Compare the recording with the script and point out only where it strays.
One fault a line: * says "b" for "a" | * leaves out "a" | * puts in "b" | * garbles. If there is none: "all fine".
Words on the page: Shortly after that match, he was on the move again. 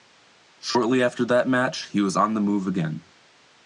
all fine